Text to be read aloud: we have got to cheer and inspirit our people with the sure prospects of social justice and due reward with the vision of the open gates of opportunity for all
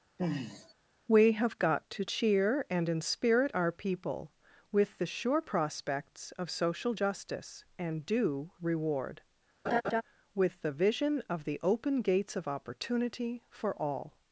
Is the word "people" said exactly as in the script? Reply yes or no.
yes